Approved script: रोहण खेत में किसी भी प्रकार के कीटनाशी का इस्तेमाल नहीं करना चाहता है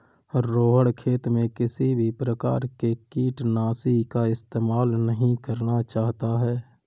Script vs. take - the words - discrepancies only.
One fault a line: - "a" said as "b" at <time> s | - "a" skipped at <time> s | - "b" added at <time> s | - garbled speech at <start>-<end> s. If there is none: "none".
none